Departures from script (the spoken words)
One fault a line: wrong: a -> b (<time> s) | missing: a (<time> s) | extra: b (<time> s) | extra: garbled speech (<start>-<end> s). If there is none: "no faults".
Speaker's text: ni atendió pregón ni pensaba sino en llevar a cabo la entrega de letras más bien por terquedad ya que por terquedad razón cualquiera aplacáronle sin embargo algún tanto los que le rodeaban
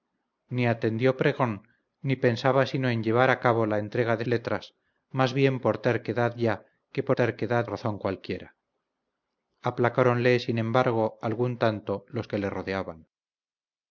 no faults